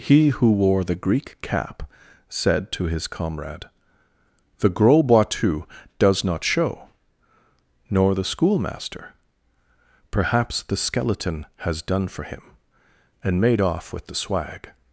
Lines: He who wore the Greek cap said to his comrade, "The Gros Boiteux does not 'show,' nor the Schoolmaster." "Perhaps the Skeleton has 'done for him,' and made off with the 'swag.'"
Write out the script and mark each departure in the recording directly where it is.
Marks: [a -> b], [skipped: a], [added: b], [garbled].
He who wore the Greek cap said to his comrade, "The Gros Boiteux does not 'show,' nor the Schoolmaster." "Perhaps the Skeleton has 'done for him,' and made off with the 'swag.'"